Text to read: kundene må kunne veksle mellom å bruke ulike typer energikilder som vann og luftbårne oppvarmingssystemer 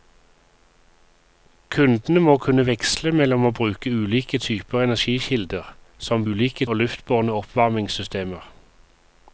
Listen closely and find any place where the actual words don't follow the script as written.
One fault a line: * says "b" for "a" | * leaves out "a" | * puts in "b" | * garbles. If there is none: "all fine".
* says "ulike" for "vann"